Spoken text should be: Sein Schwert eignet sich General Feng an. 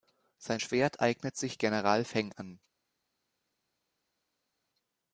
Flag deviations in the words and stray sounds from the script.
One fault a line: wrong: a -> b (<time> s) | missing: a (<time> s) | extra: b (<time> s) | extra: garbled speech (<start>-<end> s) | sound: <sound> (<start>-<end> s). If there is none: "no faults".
no faults